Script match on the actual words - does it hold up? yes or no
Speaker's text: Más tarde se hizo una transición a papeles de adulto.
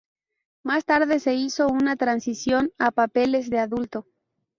yes